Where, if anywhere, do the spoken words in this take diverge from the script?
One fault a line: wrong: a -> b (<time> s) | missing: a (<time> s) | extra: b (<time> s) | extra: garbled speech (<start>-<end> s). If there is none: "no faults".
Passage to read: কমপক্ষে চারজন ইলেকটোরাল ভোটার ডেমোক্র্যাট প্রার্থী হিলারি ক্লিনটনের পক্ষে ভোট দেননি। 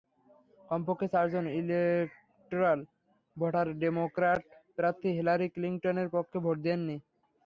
no faults